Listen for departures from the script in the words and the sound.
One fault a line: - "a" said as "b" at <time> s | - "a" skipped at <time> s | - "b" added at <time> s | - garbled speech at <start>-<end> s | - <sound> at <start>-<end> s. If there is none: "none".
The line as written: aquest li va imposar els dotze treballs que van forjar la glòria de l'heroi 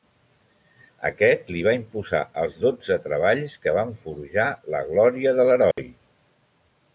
- dropout at 5.7-5.8 s